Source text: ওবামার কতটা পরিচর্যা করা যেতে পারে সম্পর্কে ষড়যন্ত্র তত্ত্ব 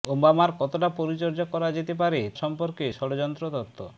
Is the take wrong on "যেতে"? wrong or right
right